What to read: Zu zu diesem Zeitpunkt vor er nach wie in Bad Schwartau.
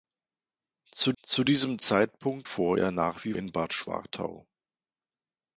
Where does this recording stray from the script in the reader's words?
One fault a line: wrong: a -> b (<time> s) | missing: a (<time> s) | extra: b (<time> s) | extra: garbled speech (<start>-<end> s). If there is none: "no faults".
no faults